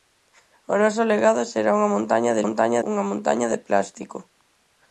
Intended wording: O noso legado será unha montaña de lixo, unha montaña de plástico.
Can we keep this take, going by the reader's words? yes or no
no